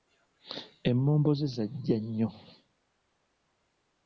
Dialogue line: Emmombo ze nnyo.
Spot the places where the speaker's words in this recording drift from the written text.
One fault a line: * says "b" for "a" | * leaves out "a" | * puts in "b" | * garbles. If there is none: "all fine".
* puts in "zajja"